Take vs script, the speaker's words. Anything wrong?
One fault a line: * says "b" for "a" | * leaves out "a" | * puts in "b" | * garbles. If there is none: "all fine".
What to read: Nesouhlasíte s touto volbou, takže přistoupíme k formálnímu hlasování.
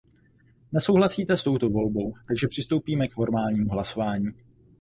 all fine